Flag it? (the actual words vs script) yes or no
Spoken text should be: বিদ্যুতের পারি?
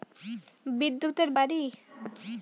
no